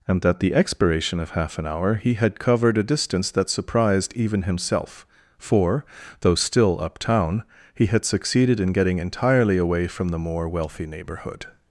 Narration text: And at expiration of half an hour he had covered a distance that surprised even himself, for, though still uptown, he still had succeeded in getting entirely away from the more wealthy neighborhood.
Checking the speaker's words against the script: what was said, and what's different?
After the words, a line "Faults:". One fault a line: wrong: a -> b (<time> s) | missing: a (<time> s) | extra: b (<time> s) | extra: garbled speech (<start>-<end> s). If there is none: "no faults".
And at the expiration of half an hour he had covered a distance that surprised even himself, for, though still uptown, he had succeeded in getting entirely away from the more wealthy neighborhood.
Faults:
extra: the (0.4 s)
missing: still (7.8 s)